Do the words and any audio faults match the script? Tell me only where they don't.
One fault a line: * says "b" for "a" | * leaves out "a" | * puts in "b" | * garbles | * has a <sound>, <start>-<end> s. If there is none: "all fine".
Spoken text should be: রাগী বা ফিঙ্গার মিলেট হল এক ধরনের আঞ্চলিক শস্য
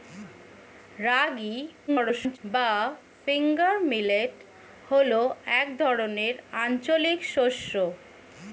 * garbles